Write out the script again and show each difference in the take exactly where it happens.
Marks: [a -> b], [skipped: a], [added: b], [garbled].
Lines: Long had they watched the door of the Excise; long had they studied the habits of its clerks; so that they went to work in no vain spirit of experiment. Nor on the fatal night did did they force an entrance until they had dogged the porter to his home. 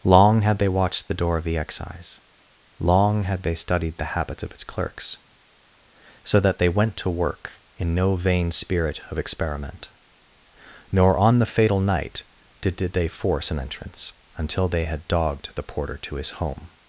Long had they watched the door of the Excise; long had they studied the habits of its clerks; so that they went to work in no vain spirit of experiment. Nor on the fatal night did did they force an entrance until they had dogged the porter to his home.